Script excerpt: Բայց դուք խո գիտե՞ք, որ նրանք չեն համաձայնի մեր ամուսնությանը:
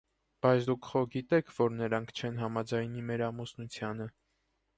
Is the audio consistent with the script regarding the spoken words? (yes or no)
yes